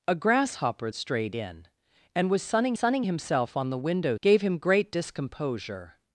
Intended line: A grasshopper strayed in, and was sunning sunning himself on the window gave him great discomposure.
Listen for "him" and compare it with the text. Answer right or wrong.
right